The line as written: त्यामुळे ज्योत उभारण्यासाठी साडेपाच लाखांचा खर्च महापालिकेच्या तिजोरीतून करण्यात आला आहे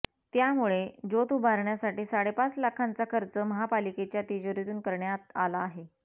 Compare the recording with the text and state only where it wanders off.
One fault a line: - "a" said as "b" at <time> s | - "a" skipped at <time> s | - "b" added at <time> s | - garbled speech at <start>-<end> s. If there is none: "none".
none